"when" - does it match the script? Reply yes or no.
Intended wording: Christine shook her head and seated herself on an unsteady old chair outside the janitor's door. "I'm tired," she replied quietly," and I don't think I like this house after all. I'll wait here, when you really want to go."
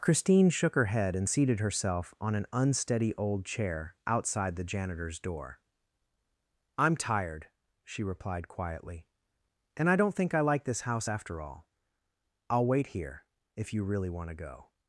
no